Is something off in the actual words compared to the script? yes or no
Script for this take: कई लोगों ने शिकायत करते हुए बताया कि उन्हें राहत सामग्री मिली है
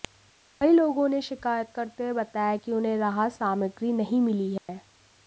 yes